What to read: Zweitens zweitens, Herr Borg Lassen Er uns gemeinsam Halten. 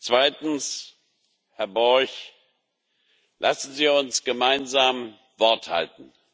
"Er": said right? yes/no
no